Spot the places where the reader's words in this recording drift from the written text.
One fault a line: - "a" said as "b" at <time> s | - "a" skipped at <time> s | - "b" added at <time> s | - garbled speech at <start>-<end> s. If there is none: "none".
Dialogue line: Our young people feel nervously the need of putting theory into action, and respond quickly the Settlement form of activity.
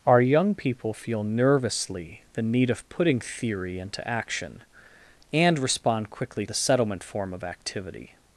none